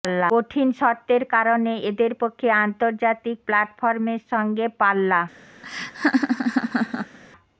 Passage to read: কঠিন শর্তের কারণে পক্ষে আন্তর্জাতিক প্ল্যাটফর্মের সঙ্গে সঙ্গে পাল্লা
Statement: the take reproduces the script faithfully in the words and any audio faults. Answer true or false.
false